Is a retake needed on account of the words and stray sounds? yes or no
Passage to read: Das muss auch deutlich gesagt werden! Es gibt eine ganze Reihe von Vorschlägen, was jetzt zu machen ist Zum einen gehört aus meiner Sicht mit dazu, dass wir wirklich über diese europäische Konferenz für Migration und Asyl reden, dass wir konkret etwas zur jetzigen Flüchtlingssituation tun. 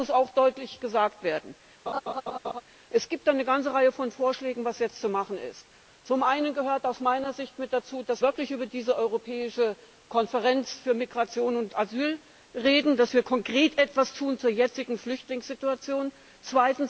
yes